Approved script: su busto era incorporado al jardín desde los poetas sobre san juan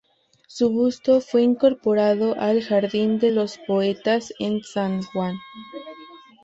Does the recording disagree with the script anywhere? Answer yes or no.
yes